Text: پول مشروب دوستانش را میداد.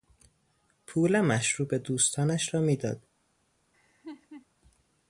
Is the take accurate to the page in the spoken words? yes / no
yes